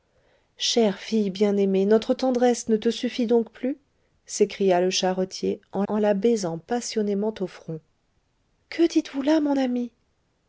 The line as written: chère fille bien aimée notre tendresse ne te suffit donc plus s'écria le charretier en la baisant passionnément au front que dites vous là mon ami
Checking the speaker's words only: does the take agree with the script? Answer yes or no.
no